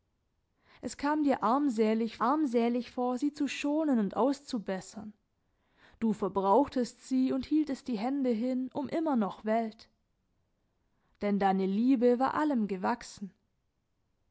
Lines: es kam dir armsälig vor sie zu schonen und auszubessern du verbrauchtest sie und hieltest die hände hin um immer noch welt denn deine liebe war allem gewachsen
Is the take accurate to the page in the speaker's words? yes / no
no